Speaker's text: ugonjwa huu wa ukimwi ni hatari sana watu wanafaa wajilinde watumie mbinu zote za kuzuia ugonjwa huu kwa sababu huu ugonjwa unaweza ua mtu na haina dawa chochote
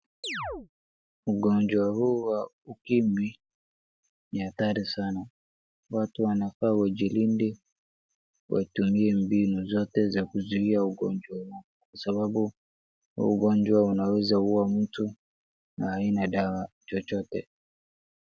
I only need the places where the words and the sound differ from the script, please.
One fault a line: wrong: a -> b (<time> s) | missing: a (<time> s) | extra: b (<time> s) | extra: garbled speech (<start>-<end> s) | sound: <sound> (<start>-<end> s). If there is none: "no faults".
sound: chirp (0.2-0.7 s)